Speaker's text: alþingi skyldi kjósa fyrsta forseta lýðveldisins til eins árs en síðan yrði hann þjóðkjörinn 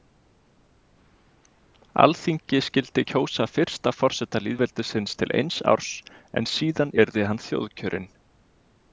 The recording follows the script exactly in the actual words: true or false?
true